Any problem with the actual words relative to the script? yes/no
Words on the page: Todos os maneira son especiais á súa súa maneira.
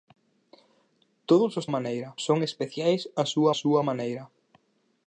no